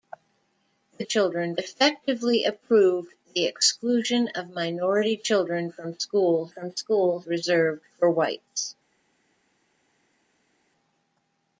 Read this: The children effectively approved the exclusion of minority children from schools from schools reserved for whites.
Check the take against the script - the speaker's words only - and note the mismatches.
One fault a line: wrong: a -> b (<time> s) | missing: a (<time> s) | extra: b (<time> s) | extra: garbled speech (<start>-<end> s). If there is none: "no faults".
no faults